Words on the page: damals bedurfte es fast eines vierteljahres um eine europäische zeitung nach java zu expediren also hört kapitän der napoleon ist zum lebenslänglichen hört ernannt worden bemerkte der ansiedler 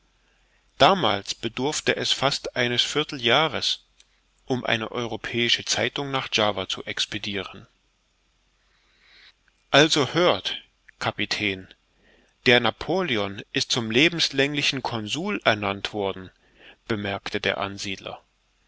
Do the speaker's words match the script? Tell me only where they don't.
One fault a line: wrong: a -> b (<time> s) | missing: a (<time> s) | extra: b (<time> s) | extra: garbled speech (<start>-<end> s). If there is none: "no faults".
wrong: hört -> consul (14.8 s)